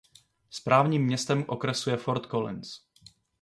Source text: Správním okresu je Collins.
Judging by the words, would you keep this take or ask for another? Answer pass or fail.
fail